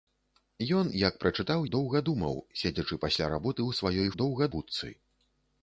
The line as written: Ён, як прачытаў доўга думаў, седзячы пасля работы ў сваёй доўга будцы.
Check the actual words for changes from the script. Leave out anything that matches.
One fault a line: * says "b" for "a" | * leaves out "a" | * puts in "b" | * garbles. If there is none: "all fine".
all fine